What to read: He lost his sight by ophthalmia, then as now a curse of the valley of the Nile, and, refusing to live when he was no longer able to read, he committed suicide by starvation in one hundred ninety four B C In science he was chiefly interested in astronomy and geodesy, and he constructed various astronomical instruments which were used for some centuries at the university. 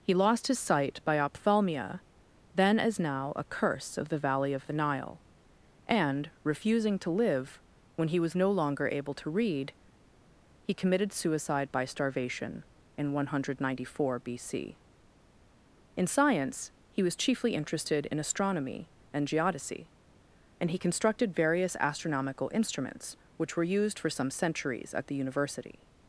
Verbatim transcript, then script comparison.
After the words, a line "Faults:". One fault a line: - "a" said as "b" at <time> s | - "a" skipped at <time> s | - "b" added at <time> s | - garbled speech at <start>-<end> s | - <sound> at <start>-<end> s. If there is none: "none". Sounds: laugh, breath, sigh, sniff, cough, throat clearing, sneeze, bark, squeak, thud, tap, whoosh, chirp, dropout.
He lost his sight by ophthalmia, then as now a curse of the valley of the Nile, and, refusing to live when he was no longer able to read, he committed suicide by starvation in one hundred ninety four B C In science he was chiefly interested in astronomy and geodesy, and he constructed various astronomical instruments which were used for some centuries at the university.
Faults:
none